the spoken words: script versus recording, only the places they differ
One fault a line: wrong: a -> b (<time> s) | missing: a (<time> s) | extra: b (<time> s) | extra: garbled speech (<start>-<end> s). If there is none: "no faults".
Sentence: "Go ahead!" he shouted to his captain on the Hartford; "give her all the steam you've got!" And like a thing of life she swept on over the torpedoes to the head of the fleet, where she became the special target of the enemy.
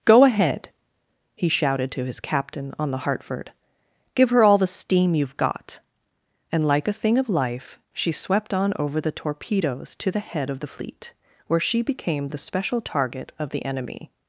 no faults